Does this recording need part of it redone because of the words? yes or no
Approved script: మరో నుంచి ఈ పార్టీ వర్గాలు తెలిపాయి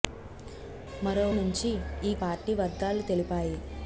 no